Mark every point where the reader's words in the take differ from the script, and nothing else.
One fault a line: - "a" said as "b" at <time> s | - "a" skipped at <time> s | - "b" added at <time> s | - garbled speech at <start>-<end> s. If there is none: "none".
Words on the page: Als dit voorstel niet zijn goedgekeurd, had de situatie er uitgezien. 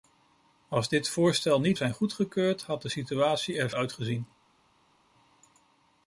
none